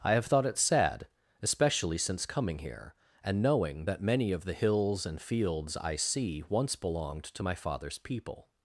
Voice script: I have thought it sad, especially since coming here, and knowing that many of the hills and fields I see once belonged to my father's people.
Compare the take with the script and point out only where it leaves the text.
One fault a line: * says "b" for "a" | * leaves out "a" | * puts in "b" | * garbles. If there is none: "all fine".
all fine